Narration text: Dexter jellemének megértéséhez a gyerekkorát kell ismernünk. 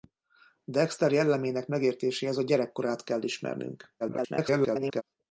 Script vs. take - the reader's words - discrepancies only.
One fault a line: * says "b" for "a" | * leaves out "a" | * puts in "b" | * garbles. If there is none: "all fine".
* garbles